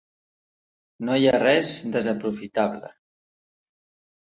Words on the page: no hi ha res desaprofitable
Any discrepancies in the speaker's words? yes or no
no